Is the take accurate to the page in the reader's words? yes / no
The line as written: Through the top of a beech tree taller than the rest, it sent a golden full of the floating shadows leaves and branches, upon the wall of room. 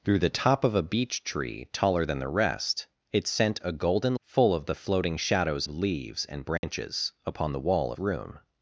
yes